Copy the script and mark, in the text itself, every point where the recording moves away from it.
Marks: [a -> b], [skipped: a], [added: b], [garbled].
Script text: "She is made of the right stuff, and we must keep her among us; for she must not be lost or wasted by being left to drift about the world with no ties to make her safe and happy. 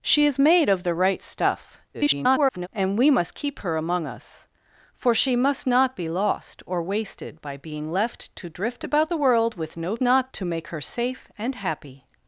"She is made of the right stuff, [garbled] and we must keep her among us; for she must not be lost or wasted by being left to drift about the world with no [ties -> not] to make her safe and happy.